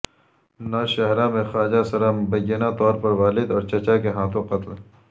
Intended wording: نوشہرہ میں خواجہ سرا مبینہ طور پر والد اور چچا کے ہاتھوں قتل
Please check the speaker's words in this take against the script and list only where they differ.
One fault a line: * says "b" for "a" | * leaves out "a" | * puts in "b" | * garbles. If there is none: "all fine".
all fine